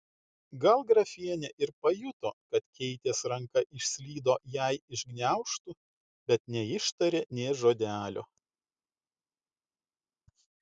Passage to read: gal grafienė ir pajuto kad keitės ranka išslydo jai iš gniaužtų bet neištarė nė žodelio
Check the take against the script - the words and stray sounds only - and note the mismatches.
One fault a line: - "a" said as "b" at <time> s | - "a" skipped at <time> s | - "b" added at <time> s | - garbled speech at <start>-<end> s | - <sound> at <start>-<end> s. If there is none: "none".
none